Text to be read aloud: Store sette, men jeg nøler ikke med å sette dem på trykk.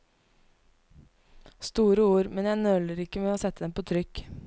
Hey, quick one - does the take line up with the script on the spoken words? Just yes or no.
no